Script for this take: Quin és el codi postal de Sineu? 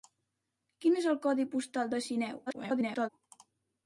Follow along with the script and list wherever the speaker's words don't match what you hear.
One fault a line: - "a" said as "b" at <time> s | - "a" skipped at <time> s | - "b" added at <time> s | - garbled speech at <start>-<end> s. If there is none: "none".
- garbled speech at 2.5-3.1 s